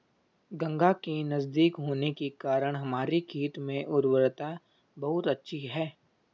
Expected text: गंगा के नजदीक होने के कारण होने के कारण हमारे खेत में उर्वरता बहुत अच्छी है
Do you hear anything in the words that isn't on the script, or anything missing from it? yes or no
yes